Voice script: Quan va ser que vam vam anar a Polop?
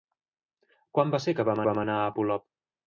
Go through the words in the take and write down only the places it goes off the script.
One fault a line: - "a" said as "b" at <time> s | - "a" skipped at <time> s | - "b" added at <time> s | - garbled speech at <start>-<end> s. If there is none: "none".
none